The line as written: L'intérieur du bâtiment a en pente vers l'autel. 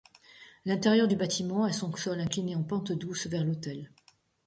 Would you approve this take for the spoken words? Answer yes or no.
no